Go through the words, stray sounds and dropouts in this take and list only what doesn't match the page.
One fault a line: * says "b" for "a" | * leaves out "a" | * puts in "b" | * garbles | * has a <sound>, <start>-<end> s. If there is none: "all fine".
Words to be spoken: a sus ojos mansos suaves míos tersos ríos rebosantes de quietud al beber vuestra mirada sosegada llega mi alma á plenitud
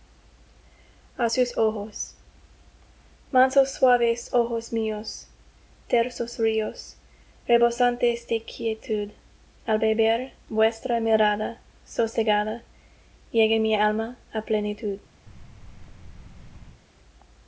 * puts in "ojos"
* has a thud, 15.3-16.8 s